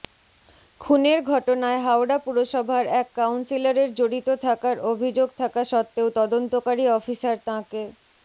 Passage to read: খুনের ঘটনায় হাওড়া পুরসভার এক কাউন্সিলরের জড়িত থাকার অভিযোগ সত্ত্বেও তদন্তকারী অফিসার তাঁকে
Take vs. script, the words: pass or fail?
fail